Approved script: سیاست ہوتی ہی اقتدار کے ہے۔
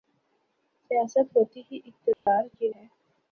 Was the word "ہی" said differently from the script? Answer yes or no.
no